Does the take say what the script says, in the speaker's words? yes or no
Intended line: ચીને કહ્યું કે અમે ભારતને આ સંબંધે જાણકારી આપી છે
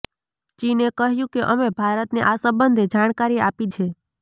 yes